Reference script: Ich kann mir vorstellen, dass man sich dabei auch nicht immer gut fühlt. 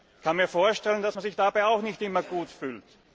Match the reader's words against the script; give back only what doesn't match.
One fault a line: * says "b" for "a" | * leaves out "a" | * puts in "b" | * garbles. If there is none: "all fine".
all fine